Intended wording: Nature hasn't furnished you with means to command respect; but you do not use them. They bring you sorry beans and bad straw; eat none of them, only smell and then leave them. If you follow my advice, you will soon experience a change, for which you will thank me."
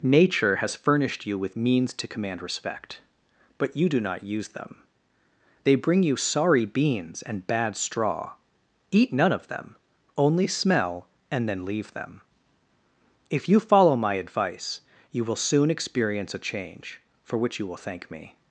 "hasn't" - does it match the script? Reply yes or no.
no